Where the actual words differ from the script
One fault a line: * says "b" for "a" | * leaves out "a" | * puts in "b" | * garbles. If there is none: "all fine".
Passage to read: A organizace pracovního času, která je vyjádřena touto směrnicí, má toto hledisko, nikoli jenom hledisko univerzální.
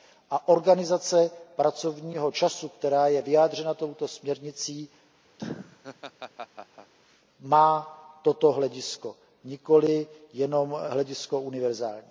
all fine